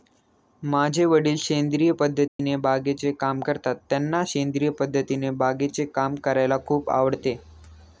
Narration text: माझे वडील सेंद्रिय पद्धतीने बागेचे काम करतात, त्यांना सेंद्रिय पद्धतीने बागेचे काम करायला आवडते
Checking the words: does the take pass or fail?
fail